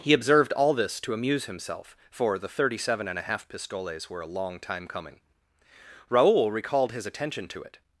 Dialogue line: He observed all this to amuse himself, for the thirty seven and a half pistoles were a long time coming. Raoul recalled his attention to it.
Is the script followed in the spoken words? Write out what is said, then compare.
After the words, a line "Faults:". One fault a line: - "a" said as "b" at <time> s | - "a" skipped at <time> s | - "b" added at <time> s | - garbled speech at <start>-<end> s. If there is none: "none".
He observed all this to amuse himself, for the thirty seven and a half pistoles were a long time coming. Raoul recalled his attention to it.
Faults:
none